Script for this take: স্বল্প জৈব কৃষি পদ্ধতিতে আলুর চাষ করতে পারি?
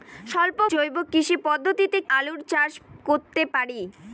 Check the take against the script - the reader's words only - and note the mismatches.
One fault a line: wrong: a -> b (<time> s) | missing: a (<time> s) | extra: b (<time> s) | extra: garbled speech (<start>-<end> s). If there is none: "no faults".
no faults